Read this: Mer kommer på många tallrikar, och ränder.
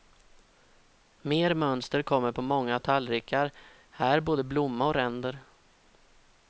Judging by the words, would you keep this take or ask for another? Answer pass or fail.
fail